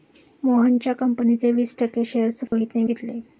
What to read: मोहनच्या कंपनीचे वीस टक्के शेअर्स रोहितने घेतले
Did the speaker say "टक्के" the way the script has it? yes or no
yes